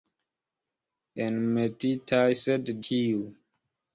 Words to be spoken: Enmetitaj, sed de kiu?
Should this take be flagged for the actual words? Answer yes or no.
yes